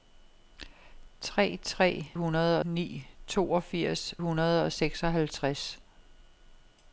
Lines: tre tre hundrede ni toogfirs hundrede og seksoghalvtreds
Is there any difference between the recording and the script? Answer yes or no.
no